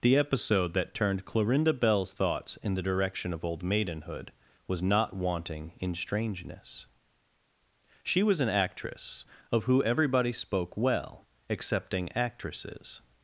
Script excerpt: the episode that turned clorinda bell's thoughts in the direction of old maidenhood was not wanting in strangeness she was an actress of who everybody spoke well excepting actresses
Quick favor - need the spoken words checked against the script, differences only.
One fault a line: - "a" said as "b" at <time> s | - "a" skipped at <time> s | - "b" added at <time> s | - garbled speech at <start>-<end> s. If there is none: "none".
none